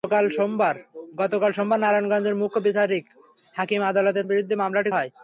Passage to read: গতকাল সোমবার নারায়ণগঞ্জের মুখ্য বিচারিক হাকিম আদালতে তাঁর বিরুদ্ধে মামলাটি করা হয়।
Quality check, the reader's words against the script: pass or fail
fail